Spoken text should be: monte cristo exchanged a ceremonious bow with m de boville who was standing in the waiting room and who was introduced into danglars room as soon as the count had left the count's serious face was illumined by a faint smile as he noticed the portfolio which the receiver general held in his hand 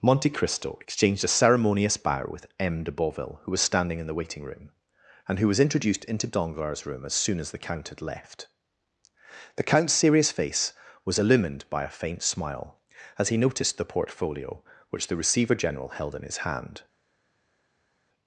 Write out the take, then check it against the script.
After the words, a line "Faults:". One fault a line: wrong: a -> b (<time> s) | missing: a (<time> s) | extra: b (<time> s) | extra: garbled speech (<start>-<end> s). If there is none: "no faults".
monte cristo exchanged a ceremonious bow with m de boville who was standing in the waiting room and who was introduced into danglars room as soon as the count had left the count's serious face was illumined by a faint smile as he noticed the portfolio which the receiver general held in his hand
Faults:
no faults